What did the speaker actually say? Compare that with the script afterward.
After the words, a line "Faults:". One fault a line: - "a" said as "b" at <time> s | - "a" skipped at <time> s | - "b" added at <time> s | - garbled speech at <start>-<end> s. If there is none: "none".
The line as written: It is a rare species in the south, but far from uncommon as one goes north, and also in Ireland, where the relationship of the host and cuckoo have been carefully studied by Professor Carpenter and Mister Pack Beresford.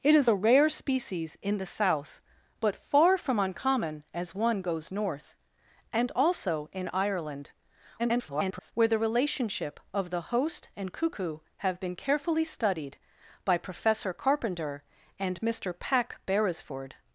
It is a rare species in the south, but far from uncommon as one goes north, and also in Ireland, [garbled] where the relationship of the host and cuckoo have been carefully studied by Professor Carpenter and Mister Pack Beresford.
Faults:
- garbled speech at 8.0-8.7 s